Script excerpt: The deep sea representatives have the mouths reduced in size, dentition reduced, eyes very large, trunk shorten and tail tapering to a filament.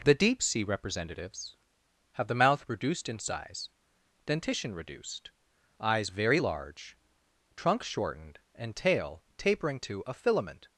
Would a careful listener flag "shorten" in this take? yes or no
yes